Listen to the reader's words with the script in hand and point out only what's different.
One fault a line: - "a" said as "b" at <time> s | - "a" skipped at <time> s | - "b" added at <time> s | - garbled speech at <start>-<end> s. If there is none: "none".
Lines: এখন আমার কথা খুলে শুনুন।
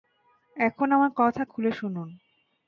none